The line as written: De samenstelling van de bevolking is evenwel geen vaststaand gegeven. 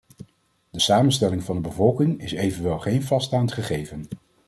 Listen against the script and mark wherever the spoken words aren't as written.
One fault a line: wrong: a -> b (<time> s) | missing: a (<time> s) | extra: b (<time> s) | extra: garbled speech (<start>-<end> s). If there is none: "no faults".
no faults